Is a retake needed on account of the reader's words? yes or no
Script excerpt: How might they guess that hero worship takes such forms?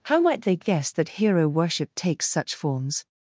no